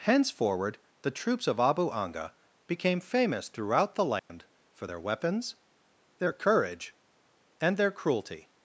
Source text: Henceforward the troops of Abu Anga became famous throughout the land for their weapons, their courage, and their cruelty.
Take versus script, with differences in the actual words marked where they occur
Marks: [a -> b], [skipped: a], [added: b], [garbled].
Henceforward the troops of Abu Anga became famous throughout the land for their weapons, their courage, and their cruelty.